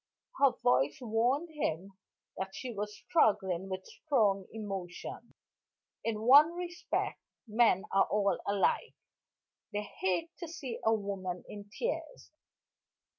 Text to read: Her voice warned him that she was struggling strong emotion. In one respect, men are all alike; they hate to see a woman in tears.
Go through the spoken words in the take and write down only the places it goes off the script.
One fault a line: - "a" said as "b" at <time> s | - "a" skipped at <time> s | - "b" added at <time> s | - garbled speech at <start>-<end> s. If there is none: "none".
- "with" added at 3.7 s